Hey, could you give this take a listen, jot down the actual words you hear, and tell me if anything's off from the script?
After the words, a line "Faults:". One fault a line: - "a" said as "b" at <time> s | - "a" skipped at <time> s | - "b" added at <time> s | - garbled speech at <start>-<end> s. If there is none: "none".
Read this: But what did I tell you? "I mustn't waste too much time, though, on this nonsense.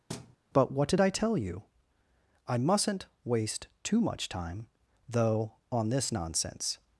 But what did I tell you? "I mustn't waste too much time, though, on this nonsense.
Faults:
none